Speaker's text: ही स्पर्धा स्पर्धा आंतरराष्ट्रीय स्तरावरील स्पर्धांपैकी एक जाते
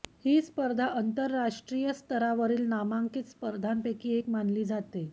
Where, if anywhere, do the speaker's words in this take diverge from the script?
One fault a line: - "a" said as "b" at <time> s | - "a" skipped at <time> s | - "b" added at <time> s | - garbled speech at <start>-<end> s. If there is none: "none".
- "स्पर्धा" skipped at 0.8 s
- "नामांकित" added at 2.7 s
- "मानली" added at 4.3 s